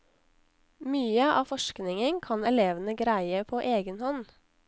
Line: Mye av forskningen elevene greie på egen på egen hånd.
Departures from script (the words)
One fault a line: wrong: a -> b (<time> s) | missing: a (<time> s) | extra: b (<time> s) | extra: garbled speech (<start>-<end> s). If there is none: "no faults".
extra: kan (2.3 s)
missing: på egen (4.0 s)